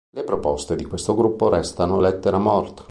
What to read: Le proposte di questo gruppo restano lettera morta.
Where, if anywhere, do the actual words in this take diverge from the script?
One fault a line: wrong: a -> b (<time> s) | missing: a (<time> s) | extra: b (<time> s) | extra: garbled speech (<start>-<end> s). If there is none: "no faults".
no faults